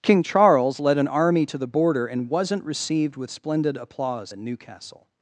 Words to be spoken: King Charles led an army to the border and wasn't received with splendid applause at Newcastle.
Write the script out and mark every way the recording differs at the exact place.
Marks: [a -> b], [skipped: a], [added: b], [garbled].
King Charles led an army to the border and wasn't received with splendid applause at Newcastle.